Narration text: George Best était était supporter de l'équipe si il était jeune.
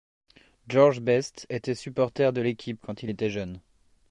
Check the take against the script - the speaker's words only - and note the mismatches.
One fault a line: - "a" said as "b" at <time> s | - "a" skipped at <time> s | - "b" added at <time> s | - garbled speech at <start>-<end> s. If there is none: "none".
- "était" skipped at 1.8 s
- "si" said as "quand" at 2.8 s